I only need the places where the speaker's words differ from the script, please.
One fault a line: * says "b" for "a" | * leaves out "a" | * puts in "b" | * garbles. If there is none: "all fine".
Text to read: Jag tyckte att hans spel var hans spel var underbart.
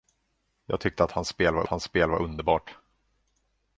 all fine